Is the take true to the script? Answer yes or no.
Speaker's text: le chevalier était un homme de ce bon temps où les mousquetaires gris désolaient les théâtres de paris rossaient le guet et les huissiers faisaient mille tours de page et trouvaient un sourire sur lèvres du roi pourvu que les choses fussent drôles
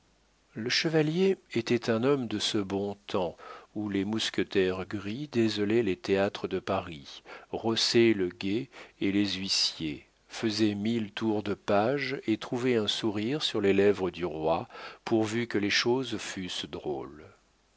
no